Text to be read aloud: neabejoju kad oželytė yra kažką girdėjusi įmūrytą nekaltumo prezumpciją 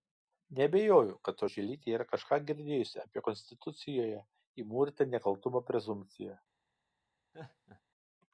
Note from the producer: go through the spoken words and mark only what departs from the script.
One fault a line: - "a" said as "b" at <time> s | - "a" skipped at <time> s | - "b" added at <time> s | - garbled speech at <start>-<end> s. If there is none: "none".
- "apie konstitucijoje" added at 3.0 s